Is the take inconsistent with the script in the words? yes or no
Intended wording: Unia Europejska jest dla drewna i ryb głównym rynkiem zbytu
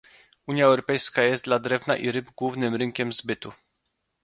no